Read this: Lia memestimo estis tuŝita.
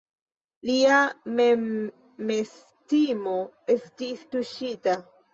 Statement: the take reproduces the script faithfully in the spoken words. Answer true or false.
true